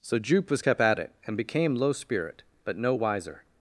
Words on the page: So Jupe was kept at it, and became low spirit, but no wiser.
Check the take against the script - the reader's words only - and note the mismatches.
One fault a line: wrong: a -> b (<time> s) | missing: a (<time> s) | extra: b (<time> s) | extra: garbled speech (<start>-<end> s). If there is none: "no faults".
no faults